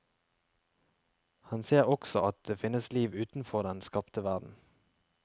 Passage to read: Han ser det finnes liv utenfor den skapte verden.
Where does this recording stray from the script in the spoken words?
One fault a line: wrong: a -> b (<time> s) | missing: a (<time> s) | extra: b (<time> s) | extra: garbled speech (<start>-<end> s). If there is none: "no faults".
extra: også at (1.8 s)